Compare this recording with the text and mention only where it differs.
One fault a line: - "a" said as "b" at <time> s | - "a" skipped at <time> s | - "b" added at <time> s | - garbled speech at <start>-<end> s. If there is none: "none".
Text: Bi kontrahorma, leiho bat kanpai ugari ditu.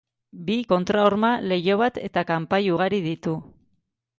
- "eta" added at 2.1 s